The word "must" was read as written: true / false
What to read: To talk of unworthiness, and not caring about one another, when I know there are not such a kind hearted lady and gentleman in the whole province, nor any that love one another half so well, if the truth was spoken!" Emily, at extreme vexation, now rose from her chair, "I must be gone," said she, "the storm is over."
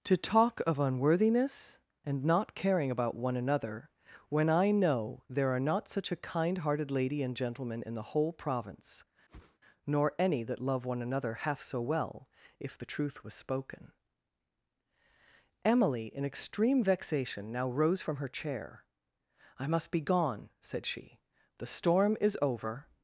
true